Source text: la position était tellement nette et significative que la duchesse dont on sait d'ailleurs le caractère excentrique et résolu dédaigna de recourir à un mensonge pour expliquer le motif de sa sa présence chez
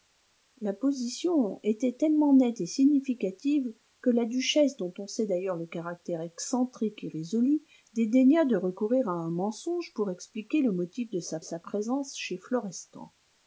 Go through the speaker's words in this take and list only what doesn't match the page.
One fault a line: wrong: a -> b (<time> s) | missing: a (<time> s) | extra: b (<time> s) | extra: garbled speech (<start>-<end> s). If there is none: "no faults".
no faults